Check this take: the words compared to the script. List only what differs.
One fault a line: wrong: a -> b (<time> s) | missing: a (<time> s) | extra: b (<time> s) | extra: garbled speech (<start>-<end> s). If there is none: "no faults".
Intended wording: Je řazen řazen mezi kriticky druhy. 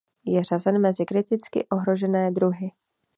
missing: řazen (0.8 s)
extra: ohrožené (1.7 s)